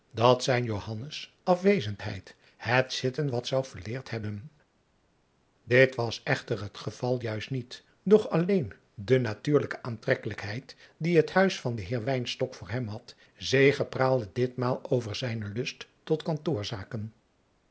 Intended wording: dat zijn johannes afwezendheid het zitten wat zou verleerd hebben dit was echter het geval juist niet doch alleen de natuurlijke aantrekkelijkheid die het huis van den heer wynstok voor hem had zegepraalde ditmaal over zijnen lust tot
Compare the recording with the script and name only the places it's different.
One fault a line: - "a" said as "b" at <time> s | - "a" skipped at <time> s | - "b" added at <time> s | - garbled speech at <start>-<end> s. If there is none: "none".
none